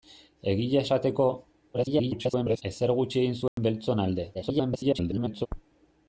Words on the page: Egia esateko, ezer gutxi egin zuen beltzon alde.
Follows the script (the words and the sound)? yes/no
no